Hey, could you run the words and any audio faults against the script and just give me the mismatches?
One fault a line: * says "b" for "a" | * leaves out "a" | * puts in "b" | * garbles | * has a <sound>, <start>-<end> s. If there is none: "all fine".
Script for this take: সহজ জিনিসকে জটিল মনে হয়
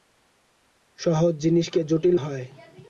* leaves out "মনে"